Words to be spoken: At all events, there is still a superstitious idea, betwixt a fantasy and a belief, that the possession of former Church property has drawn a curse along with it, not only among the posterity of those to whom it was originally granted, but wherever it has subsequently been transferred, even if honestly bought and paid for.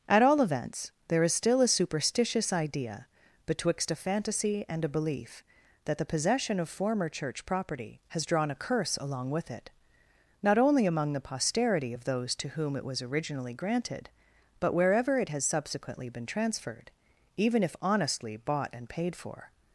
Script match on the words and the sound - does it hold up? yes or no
yes